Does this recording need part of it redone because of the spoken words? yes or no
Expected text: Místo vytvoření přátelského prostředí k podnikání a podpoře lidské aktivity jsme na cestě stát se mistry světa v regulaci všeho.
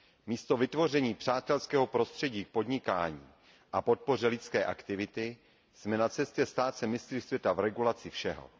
no